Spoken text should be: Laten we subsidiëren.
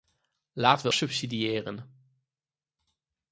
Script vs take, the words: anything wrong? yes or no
no